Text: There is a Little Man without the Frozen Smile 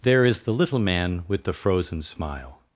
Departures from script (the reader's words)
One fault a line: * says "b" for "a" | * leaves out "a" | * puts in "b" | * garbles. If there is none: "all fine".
* says "the" for "a"
* says "with" for "without"